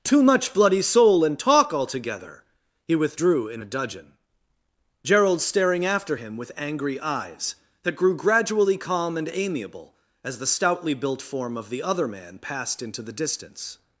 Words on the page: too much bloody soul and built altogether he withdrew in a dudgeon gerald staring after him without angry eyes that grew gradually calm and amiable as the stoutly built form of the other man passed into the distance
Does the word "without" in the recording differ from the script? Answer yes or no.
yes